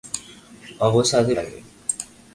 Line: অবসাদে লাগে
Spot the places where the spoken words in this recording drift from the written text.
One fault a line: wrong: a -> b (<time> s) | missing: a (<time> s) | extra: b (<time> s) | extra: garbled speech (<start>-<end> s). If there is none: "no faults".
no faults